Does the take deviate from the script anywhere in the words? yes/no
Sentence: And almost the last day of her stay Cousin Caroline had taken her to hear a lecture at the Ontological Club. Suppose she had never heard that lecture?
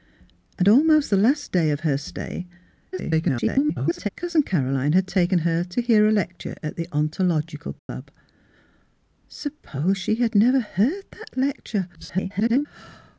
yes